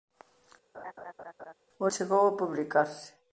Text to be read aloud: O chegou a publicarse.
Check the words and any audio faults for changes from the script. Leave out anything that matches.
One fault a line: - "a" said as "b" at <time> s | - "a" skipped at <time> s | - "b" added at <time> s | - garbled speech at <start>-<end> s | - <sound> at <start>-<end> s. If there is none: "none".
- laugh at 0.7-1.5 s